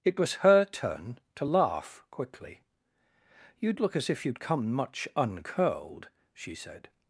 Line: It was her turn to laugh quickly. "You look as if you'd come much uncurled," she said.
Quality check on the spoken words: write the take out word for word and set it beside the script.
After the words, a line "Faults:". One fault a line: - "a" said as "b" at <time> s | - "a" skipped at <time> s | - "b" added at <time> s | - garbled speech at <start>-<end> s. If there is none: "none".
It was her turn to laugh quickly. "You look as if you'd come much uncurled," she said.
Faults:
none